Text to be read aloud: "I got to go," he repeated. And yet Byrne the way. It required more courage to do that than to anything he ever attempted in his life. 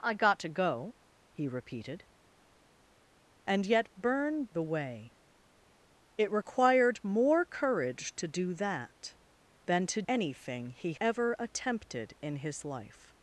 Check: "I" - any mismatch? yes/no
no